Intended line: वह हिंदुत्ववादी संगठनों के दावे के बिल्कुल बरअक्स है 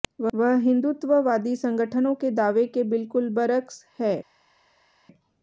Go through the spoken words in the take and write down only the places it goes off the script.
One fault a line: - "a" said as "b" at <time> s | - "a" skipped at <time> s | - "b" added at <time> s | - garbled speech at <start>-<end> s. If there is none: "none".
none